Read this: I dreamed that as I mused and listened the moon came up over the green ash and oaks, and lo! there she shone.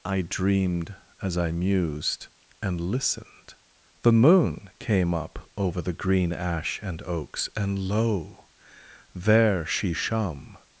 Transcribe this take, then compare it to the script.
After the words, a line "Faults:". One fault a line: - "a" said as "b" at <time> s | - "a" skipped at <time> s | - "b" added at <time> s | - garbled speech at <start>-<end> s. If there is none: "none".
I dreamed as I mused and listened the moon came up over the green ash and oaks, and lo! there she shone.
Faults:
- "that" skipped at 0.9 s